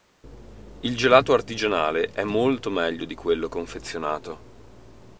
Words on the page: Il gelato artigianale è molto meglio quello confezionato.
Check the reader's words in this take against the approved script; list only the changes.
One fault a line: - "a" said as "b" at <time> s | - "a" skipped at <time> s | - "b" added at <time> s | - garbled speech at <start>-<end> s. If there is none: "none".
- "di" added at 3.0 s